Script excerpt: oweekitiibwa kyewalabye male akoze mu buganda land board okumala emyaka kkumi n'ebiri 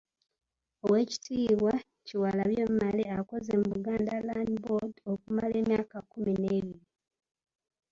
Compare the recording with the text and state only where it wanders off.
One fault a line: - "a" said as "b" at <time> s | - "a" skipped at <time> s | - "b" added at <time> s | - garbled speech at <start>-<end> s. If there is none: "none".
none